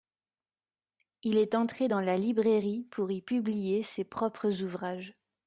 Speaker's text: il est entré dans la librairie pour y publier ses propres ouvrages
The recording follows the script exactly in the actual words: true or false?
true